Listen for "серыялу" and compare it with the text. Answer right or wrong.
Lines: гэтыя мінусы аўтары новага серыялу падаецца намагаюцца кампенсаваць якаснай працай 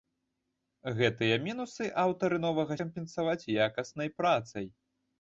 wrong